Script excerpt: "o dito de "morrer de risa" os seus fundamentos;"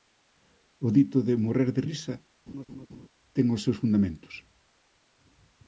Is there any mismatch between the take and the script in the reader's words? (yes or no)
yes